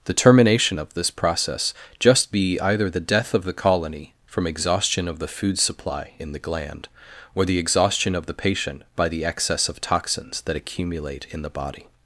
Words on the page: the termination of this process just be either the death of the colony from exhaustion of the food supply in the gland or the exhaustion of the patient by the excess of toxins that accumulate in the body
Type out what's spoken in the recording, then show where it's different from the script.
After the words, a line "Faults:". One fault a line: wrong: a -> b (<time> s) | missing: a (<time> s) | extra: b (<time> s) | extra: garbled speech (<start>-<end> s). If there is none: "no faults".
the termination of this process just be either the death of the colony from exhaustion of the food supply in the gland or the exhaustion of the patient by the excess of toxins that accumulate in the body
Faults:
no faults